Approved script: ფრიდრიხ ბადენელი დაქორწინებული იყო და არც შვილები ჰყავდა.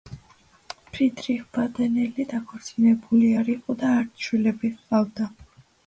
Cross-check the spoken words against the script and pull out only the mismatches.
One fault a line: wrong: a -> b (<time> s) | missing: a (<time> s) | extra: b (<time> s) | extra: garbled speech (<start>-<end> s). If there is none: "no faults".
extra: არ (3.4 s)